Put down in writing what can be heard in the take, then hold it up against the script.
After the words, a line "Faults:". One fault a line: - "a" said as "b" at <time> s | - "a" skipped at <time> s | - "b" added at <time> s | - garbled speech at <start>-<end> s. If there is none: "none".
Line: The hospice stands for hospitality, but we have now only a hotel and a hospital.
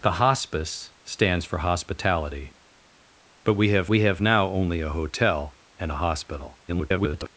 The hospice stands for hospitality, but we have we have now only a hotel and a hospital. [garbled]
Faults:
- "we have" added at 3.8 s
- garbled speech at 6.7-7.3 s